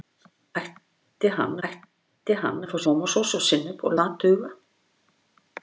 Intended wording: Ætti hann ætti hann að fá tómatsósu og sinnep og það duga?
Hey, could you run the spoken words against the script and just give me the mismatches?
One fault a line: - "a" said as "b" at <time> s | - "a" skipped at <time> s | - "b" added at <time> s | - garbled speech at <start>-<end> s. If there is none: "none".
none